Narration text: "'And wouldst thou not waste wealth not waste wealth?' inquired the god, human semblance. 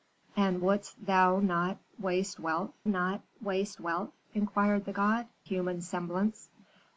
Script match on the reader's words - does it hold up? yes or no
yes